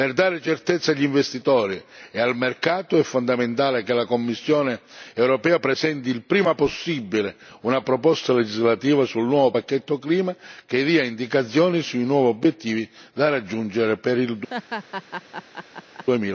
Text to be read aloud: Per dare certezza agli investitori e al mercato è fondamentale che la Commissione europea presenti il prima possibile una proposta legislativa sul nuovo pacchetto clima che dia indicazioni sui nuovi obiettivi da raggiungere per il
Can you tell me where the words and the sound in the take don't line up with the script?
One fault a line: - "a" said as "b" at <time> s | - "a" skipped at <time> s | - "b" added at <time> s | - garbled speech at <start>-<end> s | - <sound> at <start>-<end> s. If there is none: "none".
- laugh at 14.5-16.0 s